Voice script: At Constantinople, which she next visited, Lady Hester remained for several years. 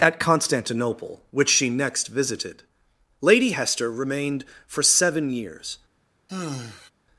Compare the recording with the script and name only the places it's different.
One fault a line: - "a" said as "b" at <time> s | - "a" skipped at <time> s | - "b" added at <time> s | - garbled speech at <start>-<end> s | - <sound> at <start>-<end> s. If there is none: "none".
- "several" said as "seven" at 4.8 s
- sigh at 6.3-6.9 s